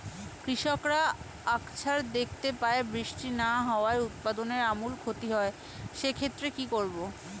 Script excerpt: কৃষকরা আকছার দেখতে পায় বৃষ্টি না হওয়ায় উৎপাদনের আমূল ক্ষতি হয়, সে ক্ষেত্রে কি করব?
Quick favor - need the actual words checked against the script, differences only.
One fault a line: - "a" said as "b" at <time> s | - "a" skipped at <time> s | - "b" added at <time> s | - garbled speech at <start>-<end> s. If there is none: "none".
none